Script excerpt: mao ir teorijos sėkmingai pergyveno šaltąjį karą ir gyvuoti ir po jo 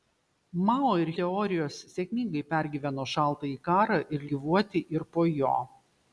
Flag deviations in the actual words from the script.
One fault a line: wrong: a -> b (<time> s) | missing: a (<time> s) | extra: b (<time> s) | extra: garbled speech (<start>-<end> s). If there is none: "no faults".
no faults